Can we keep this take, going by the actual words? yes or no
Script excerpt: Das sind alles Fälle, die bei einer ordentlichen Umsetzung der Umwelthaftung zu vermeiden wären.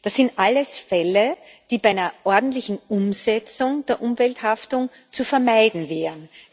yes